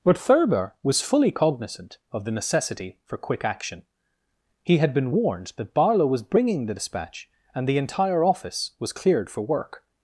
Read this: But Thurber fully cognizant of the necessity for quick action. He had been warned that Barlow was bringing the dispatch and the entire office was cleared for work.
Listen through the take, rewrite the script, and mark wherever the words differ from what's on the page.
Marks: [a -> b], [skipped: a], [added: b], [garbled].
But Thurber [added: was] fully cognizant of the necessity for quick action. He had been warned that Barlow was bringing the dispatch and the entire office was cleared for work.